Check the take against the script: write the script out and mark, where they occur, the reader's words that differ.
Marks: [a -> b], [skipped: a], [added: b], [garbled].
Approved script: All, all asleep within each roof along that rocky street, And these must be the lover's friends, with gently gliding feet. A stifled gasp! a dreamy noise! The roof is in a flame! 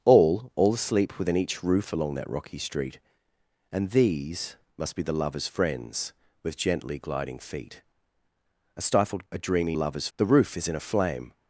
All, all asleep within each roof along that rocky street, And these must be the lover's friends, with gently gliding feet. A stifled [skipped: gasp!] a dreamy [noise! -> lover's] The roof is in a flame!